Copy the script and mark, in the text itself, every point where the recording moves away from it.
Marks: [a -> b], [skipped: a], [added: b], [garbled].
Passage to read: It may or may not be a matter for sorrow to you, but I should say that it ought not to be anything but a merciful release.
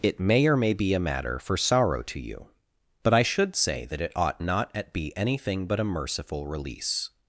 It may or may [skipped: not] be a matter for sorrow to you, but I should say that it ought not [to -> at] be anything but a merciful release.